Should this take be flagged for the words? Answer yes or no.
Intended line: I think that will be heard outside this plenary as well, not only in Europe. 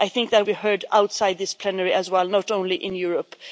yes